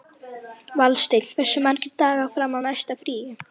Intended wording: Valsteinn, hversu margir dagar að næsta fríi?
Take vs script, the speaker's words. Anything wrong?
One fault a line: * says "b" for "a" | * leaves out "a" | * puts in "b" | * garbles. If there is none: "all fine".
* puts in "fram"